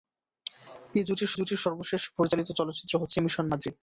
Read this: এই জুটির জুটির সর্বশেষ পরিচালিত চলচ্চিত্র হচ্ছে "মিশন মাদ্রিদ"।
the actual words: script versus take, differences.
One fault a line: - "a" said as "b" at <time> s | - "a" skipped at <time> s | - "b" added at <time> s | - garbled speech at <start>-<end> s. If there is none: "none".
none